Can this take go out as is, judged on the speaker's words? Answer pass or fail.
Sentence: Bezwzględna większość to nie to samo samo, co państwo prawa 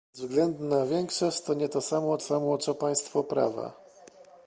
pass